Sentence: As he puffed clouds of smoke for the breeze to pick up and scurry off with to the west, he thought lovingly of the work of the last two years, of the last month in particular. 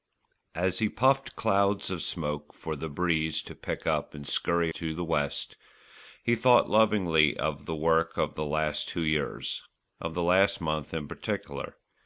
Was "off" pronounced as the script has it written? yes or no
no